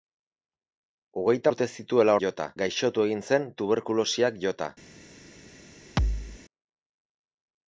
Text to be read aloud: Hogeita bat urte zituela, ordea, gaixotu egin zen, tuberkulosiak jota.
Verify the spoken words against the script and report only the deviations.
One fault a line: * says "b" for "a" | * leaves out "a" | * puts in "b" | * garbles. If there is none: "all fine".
* leaves out "bat"
* says "jota" for "ordea"